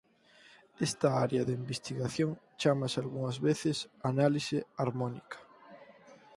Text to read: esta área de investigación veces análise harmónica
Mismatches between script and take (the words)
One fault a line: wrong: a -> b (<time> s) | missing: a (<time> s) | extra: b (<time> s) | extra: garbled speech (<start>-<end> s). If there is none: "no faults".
extra: chámase algunhas (2.6 s)